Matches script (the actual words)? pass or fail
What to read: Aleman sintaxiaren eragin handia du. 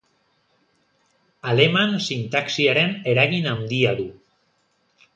pass